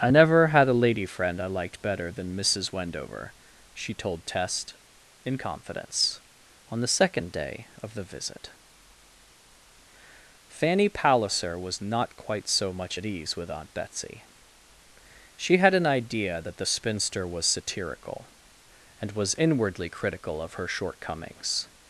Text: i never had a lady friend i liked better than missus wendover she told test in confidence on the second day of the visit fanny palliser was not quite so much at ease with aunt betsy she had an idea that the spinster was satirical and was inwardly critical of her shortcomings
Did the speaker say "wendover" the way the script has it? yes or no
yes